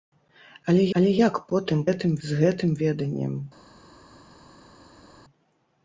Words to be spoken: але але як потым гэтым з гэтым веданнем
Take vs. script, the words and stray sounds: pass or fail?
pass